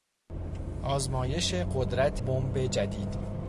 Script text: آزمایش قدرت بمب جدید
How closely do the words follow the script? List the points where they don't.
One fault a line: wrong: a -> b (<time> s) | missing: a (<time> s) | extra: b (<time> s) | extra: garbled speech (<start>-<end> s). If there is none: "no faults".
no faults